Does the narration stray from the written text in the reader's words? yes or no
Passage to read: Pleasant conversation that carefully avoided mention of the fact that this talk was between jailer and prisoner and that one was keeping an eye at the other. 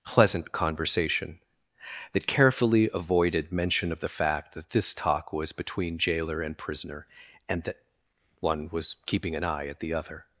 no